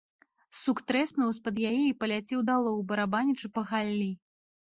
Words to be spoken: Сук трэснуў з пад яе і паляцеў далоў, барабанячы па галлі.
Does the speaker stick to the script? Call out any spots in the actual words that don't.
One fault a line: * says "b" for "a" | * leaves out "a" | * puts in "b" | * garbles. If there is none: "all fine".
all fine